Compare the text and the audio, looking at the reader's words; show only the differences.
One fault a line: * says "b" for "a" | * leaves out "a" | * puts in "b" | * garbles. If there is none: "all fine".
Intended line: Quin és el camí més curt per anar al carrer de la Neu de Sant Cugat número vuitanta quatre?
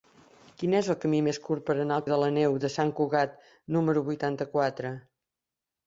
* leaves out "carrer"